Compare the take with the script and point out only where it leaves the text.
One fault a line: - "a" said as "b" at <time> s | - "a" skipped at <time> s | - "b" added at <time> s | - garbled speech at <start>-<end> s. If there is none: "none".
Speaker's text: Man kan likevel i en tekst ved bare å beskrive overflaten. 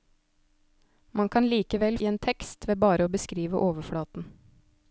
none